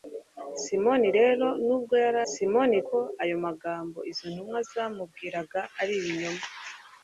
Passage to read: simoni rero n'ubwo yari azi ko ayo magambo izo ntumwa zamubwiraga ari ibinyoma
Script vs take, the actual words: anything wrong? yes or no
yes